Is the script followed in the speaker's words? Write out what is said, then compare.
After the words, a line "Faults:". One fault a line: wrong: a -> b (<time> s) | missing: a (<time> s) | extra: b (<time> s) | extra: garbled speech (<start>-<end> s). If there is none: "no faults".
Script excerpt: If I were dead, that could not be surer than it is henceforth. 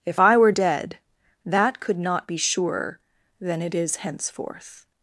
If I were dead, that could not be surer than it is henceforth.
Faults:
no faults